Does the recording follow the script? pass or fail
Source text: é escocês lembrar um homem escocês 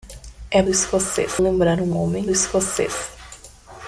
pass